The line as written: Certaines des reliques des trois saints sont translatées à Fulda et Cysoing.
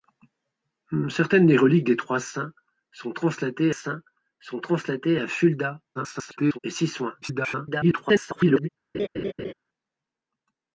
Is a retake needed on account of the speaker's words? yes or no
yes